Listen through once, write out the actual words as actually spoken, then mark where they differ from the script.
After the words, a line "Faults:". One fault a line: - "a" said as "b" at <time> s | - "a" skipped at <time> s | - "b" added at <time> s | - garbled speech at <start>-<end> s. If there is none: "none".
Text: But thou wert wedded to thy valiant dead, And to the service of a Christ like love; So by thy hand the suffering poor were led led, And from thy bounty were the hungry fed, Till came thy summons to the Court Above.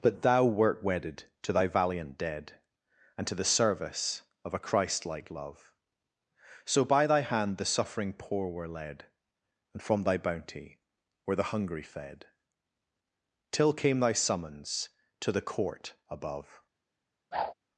But thou wert wedded to thy valiant dead, And to the service of a Christ like love; So by thy hand the suffering poor were led, And from thy bounty were the hungry fed, Till came thy summons to the Court Above.
Faults:
- "led" skipped at 9.1 s